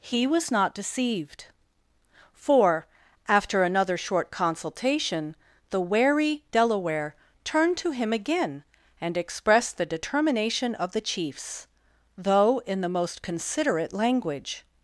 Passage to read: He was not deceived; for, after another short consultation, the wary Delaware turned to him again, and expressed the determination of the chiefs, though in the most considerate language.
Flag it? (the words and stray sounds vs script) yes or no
no